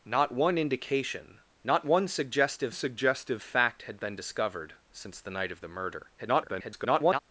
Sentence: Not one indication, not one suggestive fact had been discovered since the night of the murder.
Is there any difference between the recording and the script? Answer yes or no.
yes